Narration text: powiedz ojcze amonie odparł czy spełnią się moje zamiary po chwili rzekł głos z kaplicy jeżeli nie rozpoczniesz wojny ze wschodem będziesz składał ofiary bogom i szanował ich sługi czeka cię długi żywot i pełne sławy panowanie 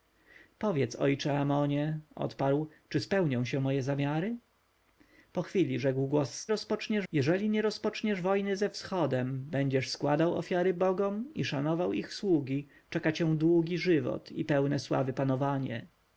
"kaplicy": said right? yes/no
no